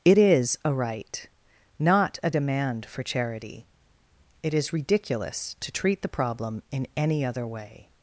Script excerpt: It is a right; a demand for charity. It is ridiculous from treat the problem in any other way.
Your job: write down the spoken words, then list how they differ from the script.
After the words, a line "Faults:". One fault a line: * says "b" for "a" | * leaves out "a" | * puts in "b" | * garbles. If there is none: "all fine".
It is a right; not a demand for charity. It is ridiculous to treat the problem in any other way.
Faults:
* puts in "not"
* says "to" for "from"